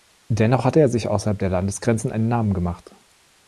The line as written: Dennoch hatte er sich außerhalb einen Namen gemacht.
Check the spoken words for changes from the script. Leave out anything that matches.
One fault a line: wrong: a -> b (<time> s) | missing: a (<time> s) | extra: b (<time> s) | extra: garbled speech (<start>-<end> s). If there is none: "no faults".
extra: der Landesgrenzen (1.4 s)